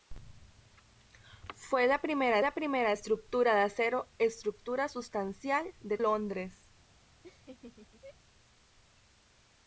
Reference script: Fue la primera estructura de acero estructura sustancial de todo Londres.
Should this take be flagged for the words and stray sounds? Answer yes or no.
yes